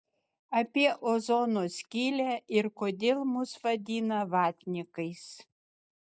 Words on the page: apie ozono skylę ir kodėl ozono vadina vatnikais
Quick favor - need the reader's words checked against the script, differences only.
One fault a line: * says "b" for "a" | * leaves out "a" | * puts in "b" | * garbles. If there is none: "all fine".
* says "mus" for "ozono"